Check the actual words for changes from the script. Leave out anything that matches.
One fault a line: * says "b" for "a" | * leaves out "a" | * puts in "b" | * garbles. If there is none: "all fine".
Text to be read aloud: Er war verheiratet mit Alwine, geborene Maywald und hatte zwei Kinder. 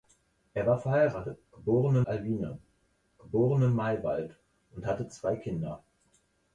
* says "geborene" for "mit"